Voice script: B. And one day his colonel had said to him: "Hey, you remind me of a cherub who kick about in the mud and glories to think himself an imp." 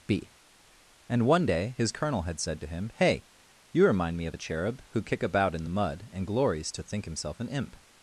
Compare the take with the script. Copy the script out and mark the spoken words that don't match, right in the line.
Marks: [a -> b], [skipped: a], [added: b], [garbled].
B. And one day his colonel had said to him: "Hey, you remind me of a cherub who kick about in the mud and glories to think himself an imp."